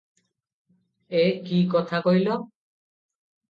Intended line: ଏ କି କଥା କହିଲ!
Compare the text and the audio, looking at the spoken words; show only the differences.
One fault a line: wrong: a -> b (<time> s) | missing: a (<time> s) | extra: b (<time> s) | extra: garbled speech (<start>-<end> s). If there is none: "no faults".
no faults